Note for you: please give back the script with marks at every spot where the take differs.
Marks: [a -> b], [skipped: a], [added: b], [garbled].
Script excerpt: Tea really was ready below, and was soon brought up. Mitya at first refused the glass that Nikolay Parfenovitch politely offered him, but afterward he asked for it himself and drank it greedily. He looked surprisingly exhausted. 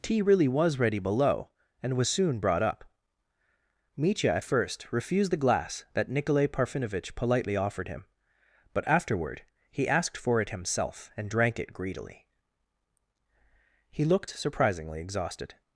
Tea really was ready below, and was soon brought up. Mitya at first refused the glass that Nikolay Parfenovitch politely offered him, but afterward he asked for it himself and drank it greedily. He looked surprisingly exhausted.